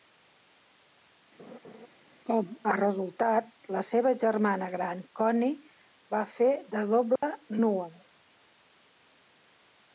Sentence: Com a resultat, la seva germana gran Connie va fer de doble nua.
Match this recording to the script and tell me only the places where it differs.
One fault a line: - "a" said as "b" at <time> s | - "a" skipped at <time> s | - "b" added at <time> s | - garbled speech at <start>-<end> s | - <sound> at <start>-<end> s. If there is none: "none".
- laugh at 1.4-1.9 s
- dropout at 7.2-7.2 s